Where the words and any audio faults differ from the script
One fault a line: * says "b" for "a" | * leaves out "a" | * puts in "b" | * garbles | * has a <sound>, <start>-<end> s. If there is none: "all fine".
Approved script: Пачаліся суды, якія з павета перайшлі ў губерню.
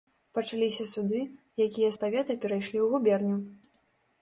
all fine